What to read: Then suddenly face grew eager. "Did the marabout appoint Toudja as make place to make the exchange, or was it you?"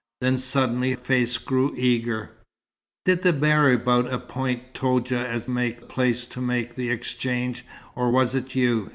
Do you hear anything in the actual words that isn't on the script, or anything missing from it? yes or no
no